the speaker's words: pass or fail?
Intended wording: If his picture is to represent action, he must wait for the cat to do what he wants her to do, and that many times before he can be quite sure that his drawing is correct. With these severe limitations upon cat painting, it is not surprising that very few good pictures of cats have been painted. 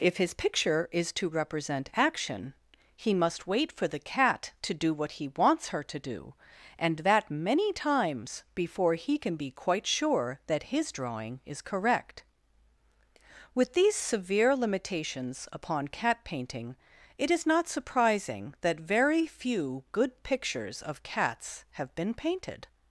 pass